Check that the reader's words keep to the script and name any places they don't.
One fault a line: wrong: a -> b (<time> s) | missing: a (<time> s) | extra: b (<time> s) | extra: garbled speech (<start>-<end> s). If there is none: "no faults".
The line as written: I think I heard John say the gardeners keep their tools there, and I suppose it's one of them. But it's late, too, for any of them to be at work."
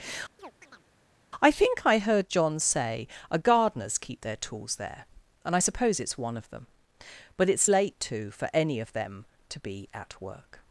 wrong: the -> a (3.3 s)